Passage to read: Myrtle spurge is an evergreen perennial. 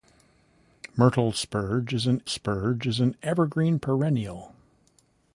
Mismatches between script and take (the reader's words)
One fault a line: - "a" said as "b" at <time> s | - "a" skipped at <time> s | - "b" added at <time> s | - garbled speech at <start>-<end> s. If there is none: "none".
- "spurge is an" added at 2.2 s